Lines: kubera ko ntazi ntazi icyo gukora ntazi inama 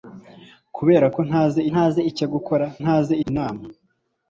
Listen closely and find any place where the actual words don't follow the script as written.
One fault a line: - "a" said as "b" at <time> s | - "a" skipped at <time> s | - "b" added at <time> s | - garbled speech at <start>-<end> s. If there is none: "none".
none